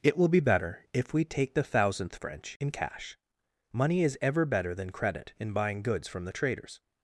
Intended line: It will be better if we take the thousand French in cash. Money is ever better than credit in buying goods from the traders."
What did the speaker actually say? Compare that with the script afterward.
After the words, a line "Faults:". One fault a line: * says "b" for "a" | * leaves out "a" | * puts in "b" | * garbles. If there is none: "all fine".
It will be better if we take the thousandth French in cash. Money is ever better than credit in buying goods from the traders."
Faults:
* says "thousandth" for "thousand"